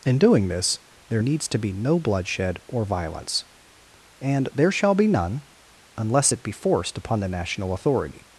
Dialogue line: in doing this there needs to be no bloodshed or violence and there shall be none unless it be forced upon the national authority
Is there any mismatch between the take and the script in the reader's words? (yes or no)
no